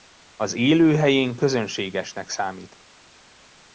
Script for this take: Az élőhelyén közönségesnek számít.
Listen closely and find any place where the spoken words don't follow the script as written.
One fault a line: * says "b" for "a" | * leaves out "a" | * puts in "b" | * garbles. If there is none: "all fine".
all fine